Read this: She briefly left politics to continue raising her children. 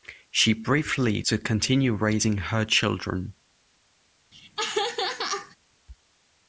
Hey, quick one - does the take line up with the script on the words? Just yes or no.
no